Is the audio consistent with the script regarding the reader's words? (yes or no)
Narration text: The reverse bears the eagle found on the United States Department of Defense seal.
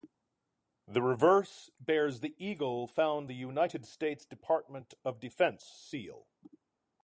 no